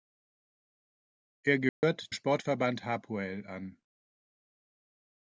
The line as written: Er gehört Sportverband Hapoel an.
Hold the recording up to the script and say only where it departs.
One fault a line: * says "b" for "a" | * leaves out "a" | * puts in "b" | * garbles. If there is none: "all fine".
all fine